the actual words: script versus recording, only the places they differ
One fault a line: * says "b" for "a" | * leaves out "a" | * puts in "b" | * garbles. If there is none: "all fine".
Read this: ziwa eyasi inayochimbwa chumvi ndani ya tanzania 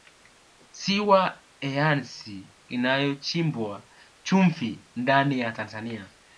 all fine